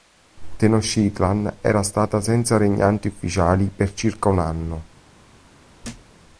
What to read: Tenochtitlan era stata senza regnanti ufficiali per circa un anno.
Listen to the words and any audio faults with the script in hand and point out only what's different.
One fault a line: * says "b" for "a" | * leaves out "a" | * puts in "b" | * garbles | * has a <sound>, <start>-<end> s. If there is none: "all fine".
* has a thud, 5.8-6.1 s